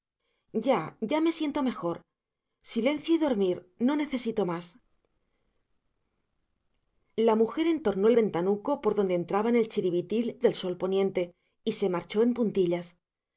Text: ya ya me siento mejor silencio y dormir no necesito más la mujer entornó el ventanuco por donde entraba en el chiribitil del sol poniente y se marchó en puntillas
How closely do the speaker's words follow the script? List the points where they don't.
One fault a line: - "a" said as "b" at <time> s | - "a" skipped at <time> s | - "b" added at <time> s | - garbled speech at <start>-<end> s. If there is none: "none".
none